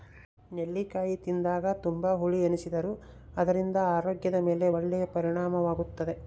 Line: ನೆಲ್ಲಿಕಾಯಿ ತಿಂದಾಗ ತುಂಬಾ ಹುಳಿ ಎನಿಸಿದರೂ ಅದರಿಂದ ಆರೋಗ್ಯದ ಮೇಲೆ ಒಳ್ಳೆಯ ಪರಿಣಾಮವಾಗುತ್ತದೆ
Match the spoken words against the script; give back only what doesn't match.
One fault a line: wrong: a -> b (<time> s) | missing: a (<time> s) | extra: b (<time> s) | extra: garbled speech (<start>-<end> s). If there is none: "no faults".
no faults